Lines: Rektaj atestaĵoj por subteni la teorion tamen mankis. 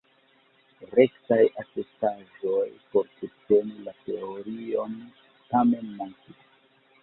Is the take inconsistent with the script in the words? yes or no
no